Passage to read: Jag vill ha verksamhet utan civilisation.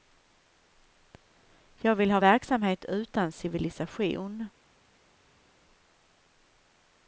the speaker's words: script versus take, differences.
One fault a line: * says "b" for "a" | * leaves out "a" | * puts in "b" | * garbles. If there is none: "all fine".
all fine